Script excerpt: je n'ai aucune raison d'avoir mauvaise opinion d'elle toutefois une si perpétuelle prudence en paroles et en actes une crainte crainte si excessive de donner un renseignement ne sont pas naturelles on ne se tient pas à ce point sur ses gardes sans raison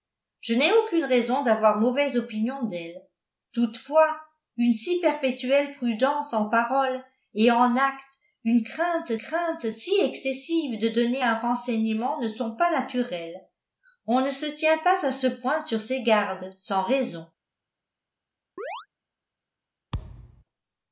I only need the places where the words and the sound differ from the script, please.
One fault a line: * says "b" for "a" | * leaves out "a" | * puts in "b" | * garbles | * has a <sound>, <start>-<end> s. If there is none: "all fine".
* has a chirp, 18.6-18.9 s
* has a thud, 19.9-20.4 s